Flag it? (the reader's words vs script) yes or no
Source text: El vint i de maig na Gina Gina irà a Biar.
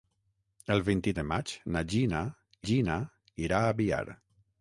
no